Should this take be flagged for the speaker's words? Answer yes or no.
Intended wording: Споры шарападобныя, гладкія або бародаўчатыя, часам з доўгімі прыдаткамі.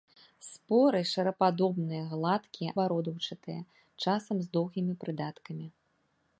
yes